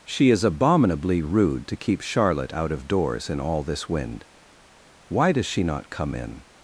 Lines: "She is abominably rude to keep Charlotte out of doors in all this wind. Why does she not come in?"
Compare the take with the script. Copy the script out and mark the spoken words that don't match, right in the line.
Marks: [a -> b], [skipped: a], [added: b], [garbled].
"She is abominably rude to keep Charlotte out of doors in all this wind. Why does she not come in?"